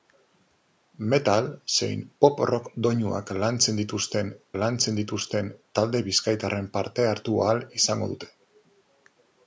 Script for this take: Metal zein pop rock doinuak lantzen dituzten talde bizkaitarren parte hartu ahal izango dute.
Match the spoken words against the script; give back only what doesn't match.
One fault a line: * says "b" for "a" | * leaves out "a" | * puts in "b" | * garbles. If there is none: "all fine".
* puts in "lantzen dituzten"